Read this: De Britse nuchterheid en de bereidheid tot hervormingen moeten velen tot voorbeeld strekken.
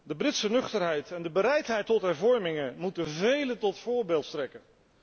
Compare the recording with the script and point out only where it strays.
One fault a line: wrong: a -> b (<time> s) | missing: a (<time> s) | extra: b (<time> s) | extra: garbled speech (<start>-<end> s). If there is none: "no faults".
no faults